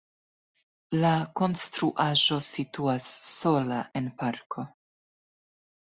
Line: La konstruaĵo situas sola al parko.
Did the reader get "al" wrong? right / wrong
wrong